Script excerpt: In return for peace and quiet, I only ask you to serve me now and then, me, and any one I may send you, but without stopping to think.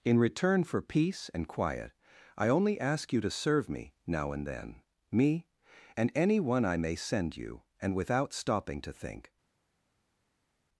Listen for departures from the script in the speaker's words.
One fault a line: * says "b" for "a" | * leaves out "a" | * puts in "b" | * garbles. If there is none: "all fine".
* says "and" for "but"